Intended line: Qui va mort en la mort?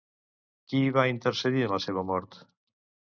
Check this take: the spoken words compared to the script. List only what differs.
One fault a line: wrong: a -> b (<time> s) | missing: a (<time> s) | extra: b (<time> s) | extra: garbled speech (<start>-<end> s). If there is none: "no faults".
wrong: mort -> intercedir (1.1 s)
extra: seva (1.9 s)